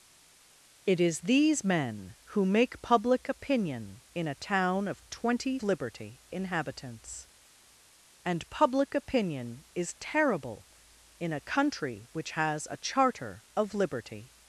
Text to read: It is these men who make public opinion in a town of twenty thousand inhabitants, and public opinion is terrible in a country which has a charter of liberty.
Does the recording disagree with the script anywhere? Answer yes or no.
yes